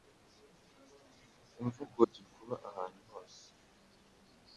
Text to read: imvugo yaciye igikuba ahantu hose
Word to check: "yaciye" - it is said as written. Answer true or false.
false